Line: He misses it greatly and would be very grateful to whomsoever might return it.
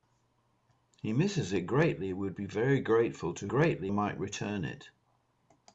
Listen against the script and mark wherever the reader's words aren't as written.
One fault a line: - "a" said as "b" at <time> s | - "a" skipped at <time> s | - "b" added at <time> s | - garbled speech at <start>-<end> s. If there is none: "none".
- "whomsoever" said as "greatly" at 3.5 s